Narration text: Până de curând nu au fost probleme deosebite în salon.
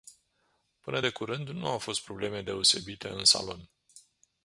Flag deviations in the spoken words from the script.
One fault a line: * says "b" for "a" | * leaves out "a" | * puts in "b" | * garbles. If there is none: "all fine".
all fine